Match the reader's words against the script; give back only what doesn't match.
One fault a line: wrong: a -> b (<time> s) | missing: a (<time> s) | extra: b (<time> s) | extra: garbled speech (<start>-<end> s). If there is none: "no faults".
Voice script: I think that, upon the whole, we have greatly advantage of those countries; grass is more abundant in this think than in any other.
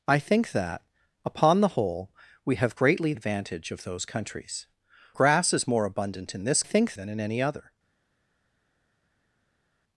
no faults